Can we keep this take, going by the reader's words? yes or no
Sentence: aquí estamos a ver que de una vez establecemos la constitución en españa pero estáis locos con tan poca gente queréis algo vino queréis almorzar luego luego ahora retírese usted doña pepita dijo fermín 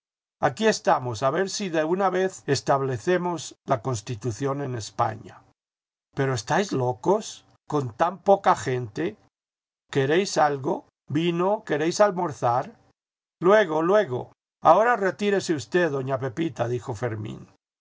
no